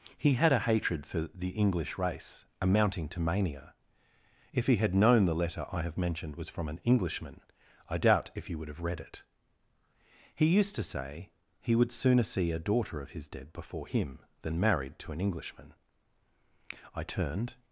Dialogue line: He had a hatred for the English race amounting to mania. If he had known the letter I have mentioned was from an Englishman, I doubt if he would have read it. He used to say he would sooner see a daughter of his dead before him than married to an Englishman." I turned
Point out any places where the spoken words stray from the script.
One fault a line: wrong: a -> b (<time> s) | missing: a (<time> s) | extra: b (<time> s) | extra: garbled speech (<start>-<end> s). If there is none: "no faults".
no faults